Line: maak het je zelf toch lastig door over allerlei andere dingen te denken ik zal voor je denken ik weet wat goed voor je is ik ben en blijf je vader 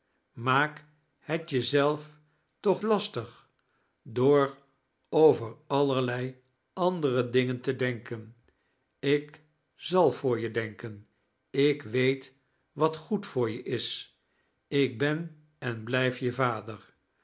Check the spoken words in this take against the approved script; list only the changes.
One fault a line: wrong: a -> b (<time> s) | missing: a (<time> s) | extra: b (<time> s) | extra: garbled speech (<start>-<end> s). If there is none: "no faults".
no faults